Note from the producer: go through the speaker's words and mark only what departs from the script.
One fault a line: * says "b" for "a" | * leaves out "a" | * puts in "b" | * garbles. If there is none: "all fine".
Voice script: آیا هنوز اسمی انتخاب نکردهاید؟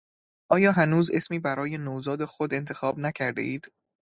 * puts in "برای نوزاد خود"